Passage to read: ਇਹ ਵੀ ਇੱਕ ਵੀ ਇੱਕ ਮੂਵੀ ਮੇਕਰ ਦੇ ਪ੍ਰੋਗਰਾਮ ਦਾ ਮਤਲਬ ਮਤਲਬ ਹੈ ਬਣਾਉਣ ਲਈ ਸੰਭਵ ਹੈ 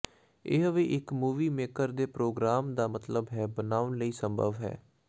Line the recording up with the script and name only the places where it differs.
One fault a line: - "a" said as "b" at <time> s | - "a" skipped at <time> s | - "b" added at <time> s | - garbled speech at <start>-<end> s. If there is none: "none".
- "ਵੀ ਇੱਕ" skipped at 1.1 s
- "ਮਤਲਬ" skipped at 3.3 s